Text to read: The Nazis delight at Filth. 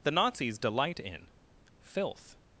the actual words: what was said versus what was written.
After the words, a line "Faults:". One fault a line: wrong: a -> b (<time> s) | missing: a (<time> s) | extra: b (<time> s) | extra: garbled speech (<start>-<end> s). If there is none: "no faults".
The Nazis delight in Filth.
Faults:
wrong: at -> in (1.0 s)